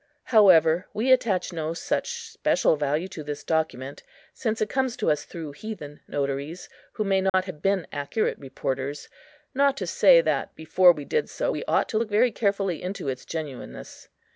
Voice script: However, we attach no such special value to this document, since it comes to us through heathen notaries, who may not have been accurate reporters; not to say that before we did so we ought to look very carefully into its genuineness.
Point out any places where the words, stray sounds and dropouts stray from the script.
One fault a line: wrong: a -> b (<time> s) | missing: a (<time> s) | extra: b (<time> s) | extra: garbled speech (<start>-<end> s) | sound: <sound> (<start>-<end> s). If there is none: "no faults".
sound: dropout (7.3-7.3 s)